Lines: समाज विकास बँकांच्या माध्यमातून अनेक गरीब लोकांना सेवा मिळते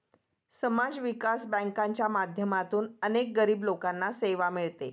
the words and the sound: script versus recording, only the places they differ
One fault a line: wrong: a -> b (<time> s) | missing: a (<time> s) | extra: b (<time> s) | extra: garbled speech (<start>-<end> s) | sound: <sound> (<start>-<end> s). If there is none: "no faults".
no faults